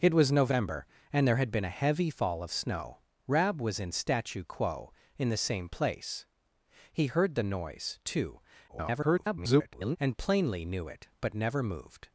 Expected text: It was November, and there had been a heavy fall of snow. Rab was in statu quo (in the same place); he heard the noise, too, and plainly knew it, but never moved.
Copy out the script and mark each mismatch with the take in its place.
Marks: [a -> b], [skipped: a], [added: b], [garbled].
It was November, and there had been a heavy fall of snow. Rab was in statu quo (in the same place); he heard the noise, too, [garbled] and plainly knew it, but never moved.